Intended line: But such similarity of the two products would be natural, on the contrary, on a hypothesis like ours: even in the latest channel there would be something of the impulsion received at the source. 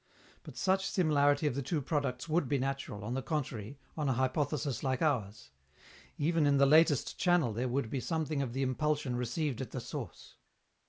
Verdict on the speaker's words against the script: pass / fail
pass